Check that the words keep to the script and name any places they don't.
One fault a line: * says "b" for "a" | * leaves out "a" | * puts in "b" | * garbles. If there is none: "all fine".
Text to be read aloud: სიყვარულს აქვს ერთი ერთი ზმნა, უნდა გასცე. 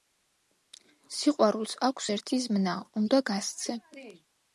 * leaves out "ერთი"